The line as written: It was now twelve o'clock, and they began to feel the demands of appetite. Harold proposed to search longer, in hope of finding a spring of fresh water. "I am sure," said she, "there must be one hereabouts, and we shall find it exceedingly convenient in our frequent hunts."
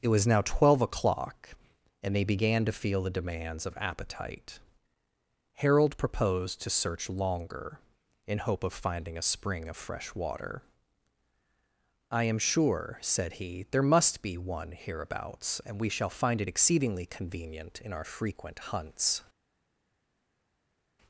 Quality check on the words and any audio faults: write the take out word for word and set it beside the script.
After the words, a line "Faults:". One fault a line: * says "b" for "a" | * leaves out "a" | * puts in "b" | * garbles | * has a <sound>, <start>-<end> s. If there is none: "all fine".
It was now twelve o'clock, and they began to feel the demands of appetite. Harold proposed to search longer, in hope of finding a spring of fresh water. "I am sure," said he, "there must be one hereabouts, and we shall find it exceedingly convenient in our frequent hunts."
Faults:
* says "he" for "she"